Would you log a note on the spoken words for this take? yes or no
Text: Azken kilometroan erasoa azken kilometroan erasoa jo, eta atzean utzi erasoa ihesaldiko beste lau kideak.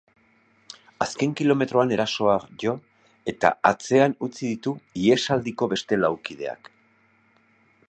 yes